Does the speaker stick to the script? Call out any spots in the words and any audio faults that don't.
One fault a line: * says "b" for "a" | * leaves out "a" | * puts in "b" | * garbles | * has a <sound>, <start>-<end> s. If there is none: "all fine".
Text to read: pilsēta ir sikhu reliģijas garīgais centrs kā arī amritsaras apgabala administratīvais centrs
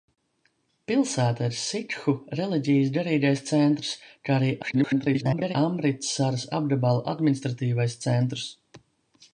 * garbles